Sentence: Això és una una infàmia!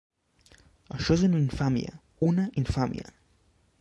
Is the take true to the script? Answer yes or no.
no